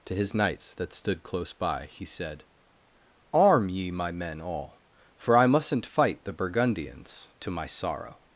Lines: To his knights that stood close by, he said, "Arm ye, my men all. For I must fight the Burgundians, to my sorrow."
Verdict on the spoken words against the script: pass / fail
fail